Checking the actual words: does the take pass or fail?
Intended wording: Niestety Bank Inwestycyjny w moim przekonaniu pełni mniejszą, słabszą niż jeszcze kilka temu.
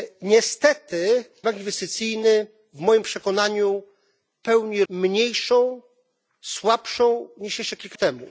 pass